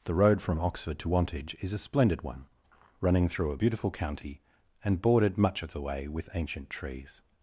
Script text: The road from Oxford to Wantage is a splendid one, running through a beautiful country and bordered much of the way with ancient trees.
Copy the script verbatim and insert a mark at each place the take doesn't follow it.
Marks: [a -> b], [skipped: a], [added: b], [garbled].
The road from Oxford to Wantage is a splendid one, running through a beautiful [country -> county] and bordered much of the way with ancient trees.